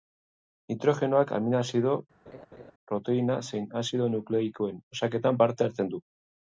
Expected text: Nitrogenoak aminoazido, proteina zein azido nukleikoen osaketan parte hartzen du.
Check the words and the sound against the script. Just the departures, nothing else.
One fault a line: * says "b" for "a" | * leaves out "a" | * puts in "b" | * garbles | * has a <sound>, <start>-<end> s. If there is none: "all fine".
* has a laugh, 2.3-2.7 s